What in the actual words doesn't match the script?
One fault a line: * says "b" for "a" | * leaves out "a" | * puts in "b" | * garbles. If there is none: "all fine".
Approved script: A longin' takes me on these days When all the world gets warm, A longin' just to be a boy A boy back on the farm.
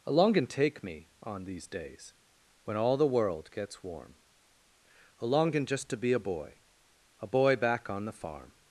* says "take" for "takes"